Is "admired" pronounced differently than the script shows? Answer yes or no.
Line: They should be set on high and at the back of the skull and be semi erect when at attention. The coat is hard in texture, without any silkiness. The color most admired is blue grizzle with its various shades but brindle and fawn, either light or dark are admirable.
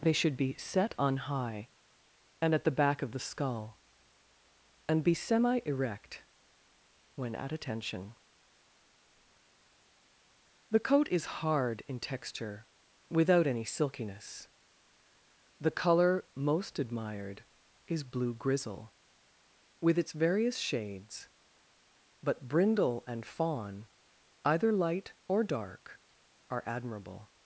no